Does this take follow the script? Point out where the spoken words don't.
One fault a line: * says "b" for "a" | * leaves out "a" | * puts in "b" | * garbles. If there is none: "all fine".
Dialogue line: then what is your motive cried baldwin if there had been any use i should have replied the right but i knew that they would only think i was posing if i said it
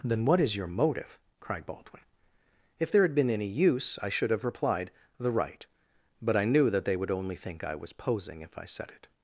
all fine